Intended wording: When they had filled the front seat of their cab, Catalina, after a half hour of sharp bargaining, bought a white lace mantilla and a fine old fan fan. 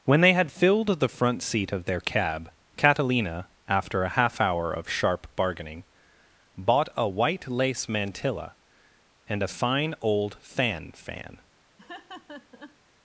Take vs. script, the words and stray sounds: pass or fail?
fail